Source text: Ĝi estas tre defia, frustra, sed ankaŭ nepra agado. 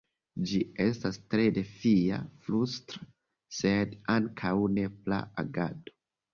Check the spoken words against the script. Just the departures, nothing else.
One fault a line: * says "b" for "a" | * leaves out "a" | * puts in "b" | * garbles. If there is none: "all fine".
all fine